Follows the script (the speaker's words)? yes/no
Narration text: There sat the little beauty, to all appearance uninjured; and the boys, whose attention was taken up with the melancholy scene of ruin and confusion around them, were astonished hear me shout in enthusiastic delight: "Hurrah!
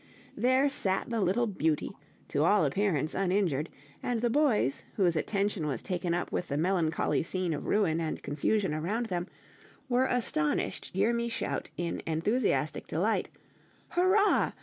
yes